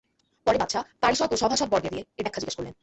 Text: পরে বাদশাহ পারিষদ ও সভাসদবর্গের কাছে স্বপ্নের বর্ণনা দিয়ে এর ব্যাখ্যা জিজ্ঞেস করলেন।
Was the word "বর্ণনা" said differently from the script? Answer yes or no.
yes